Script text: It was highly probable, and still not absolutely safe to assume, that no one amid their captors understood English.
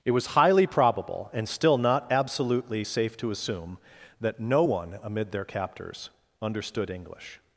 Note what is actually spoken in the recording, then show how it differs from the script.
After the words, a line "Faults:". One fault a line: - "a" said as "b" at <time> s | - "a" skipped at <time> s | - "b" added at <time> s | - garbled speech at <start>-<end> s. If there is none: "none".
It was highly probable, and still not absolutely safe to assume, that no one amid their captors understood English.
Faults:
none